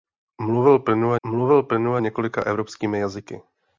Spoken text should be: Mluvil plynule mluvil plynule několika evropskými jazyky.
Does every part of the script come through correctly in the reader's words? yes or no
yes